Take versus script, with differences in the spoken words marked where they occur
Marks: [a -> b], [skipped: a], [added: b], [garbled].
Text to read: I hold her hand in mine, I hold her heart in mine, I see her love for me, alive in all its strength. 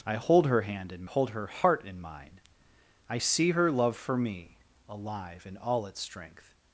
I hold her hand in [skipped: mine, I] hold her heart in mine, I see her love for me, alive in all its strength.